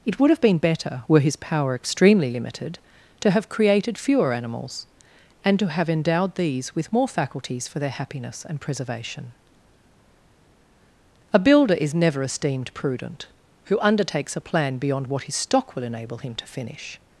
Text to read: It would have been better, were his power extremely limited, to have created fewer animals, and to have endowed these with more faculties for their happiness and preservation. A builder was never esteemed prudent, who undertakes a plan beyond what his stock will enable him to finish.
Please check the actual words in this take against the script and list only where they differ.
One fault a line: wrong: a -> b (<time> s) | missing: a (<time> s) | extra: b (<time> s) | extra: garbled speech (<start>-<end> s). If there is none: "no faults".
wrong: was -> is (11.8 s)